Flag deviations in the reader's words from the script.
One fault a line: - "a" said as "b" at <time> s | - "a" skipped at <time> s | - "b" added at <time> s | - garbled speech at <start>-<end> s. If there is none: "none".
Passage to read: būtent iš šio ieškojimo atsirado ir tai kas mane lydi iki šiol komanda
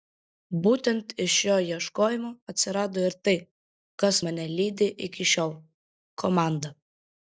none